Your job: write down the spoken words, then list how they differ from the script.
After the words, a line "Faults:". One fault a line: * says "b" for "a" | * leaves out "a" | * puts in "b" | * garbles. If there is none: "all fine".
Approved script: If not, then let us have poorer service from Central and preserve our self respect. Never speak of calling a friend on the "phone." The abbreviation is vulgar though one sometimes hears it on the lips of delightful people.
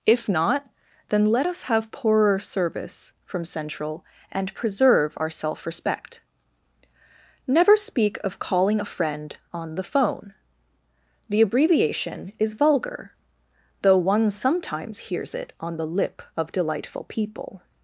If not, then let us have poorer service from Central and preserve our self respect. Never speak of calling a friend on the "phone." The abbreviation is vulgar though one sometimes hears it on the lip of delightful people.
Faults:
* says "lip" for "lips"